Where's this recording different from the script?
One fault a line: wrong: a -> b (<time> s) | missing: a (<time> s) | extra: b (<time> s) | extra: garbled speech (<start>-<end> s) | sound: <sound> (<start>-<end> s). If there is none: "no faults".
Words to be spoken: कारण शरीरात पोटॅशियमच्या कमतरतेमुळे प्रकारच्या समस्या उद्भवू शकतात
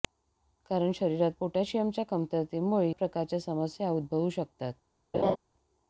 sound: laugh (5.1-5.4 s)